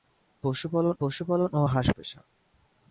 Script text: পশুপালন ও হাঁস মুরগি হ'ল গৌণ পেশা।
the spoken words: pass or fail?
fail